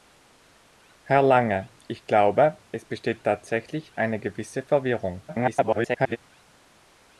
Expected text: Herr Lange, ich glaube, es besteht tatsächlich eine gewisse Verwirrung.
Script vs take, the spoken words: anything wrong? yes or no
yes